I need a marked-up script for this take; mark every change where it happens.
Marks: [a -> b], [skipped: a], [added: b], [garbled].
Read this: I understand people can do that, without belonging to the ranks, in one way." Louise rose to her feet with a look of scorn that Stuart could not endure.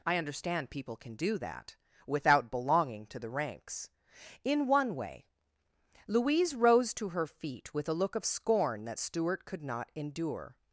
I understand people can do that, without belonging to the ranks, in one way." Louise rose to her feet with a look of scorn that Stuart could not endure.